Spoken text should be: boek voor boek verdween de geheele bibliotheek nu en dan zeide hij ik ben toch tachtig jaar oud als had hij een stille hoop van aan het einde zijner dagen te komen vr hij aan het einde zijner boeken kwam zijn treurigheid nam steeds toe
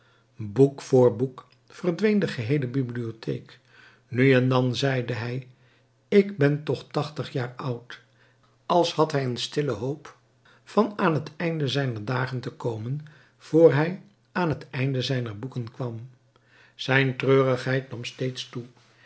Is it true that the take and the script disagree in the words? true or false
false